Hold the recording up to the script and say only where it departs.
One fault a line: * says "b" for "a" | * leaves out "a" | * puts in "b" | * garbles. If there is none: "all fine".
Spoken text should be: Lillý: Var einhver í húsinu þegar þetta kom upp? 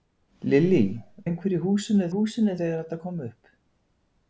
* leaves out "Var"
* puts in "húsinu"